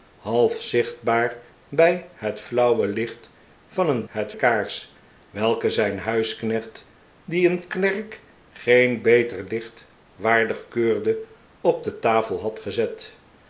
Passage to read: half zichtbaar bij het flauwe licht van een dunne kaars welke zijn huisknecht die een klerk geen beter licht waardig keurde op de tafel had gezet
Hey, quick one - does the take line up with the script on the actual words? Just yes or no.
no